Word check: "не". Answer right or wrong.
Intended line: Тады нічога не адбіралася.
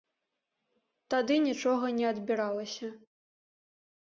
right